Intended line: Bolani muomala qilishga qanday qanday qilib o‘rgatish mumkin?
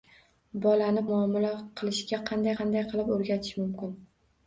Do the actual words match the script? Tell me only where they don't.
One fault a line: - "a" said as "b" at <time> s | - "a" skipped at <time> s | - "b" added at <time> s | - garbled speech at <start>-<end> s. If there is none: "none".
none